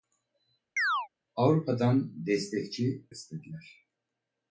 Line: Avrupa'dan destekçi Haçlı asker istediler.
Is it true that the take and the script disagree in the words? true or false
true